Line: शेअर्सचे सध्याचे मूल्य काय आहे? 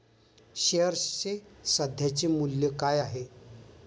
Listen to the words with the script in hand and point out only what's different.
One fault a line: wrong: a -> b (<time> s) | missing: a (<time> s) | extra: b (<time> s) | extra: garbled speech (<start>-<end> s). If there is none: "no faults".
no faults